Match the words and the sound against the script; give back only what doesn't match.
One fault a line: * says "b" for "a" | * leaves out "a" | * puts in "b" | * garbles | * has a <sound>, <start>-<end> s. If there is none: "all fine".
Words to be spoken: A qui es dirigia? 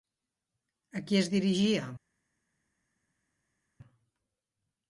all fine